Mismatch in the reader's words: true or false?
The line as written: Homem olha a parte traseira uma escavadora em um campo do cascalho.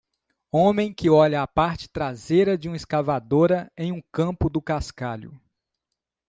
true